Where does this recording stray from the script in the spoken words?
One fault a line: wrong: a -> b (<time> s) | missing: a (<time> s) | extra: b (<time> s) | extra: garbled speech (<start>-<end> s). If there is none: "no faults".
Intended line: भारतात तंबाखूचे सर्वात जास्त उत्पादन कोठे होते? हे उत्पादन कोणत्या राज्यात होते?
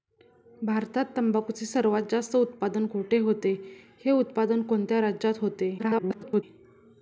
extra: garbled speech (5.8-6.4 s)